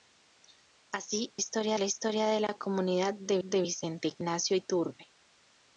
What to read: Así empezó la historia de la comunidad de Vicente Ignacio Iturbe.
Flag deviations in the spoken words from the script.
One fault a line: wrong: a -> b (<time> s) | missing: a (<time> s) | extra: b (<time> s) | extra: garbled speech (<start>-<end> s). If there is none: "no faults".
wrong: empezó -> historia (1.4 s)
extra: de (3.4 s)